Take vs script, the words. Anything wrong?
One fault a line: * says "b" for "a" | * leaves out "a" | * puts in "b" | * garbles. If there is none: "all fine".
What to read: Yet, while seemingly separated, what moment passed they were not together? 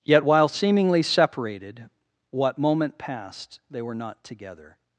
all fine